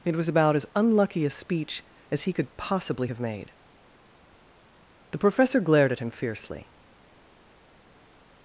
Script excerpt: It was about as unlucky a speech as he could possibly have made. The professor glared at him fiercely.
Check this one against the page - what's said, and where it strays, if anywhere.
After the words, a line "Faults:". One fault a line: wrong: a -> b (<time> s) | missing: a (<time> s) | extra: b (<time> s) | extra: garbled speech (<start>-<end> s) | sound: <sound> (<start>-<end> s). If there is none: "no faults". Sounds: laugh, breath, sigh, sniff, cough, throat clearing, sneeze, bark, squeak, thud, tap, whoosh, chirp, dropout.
It was about as unlucky a speech as he could possibly have made. The professor glared at him fiercely.
Faults:
no faults